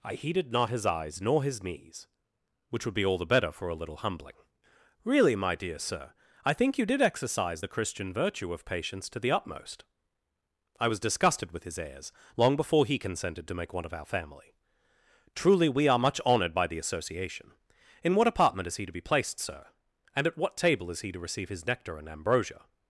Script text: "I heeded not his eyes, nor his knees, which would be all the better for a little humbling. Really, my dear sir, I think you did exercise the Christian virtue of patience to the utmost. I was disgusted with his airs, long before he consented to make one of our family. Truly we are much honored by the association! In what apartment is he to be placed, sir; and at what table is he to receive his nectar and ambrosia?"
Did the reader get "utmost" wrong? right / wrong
right